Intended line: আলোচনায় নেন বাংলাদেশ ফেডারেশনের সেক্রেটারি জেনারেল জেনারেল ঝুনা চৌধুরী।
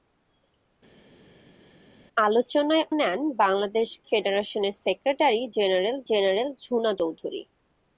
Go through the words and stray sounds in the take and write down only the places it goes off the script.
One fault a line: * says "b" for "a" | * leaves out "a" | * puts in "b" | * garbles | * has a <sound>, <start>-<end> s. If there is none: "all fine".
all fine